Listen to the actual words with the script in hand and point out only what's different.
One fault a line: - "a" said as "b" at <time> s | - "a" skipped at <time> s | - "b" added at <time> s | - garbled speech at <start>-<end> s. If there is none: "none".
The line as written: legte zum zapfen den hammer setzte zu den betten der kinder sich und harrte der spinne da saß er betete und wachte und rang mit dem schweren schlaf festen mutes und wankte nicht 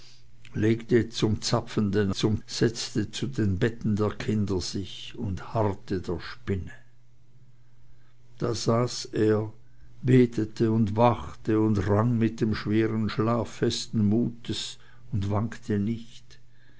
- "hammer" said as "zum" at 2.1 s